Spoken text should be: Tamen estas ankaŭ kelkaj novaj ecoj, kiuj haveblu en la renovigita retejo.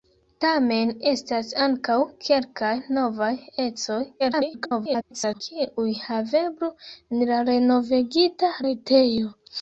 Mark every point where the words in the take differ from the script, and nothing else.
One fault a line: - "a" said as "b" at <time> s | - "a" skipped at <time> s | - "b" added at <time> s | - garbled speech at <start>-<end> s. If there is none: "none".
- garbled speech at 4.2-5.4 s